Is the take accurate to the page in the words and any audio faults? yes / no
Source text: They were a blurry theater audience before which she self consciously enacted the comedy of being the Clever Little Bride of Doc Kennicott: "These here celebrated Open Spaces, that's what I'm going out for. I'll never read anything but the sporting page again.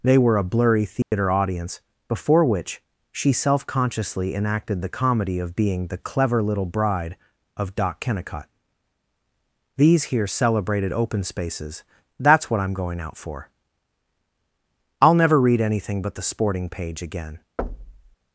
no